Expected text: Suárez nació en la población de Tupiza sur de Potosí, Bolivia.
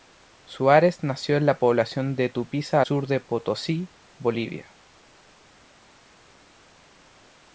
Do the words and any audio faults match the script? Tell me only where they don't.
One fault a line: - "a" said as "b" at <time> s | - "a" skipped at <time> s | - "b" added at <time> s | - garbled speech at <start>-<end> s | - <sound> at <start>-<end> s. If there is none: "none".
none